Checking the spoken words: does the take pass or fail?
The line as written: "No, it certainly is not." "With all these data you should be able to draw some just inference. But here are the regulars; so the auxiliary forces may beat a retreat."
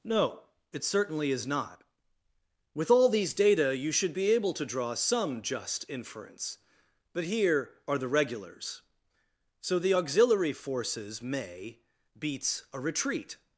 fail